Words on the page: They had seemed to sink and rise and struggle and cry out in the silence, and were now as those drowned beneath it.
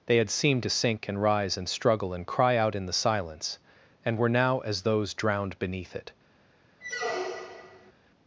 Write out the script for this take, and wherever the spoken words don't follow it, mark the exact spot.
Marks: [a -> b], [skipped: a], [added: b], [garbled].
They had seemed to sink and rise and struggle and cry out in the silence, and were now as those drowned beneath it.